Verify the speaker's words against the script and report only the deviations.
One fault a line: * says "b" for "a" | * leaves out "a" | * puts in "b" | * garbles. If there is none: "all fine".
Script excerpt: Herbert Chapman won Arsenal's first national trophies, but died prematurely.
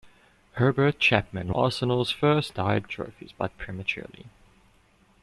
* leaves out "won"
* says "died" for "national"
* leaves out "died"